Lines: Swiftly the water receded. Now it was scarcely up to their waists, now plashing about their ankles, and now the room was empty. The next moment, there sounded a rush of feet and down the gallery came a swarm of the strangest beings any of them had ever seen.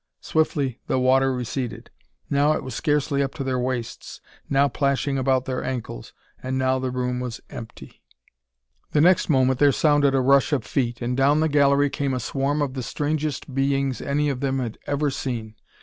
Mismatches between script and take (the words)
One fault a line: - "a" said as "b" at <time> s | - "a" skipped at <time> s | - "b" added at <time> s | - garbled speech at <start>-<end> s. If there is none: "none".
none